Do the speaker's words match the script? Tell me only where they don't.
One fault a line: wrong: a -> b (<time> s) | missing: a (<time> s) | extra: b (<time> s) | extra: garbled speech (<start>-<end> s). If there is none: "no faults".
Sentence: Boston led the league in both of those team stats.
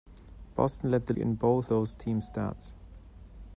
missing: league (1.1 s)
missing: of (1.7 s)